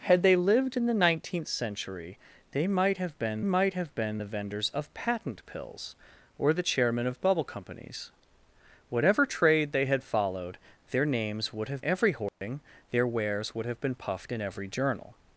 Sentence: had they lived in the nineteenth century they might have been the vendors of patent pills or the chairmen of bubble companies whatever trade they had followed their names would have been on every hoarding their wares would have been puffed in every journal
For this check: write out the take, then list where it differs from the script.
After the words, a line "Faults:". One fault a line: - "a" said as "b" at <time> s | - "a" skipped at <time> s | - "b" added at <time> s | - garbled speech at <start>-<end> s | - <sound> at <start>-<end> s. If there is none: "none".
had they lived in the nineteenth century they might have been might have been the vendors of patent pills or the chairmen of bubble companies whatever trade they had followed their names would have every hoarding their wares would have been puffed in every journal
Faults:
- "might have been" added at 3.4 s
- "been on" skipped at 11.8 s
- dropout at 12.3-12.4 s